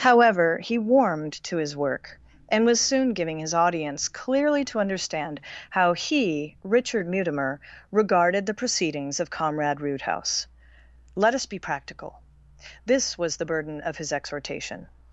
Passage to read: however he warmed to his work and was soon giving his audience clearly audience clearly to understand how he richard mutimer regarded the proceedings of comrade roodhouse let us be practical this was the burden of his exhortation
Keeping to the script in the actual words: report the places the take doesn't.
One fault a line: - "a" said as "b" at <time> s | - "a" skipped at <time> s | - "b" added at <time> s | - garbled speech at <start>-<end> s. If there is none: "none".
- "audience clearly" skipped at 4.7 s